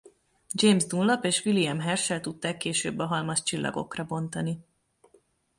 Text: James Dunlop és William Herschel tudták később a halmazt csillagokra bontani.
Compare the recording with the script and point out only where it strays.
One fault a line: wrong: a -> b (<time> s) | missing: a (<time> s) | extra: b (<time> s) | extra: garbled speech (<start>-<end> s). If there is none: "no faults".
no faults